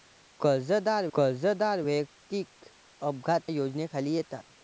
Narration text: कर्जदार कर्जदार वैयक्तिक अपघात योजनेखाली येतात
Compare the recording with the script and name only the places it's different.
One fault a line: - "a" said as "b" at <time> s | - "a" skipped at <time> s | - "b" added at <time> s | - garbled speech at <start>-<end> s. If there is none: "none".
none